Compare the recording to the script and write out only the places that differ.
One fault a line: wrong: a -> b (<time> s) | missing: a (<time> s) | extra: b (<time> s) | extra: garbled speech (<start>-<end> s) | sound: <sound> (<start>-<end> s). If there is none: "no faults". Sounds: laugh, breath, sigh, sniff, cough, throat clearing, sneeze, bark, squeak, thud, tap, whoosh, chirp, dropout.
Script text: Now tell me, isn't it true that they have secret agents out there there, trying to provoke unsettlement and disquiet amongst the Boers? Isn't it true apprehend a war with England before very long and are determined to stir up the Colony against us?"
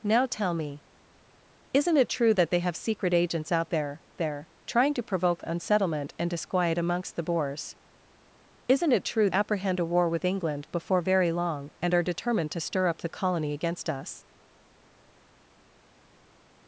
no faults